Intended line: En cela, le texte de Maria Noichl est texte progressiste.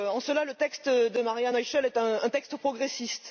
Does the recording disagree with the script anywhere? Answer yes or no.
yes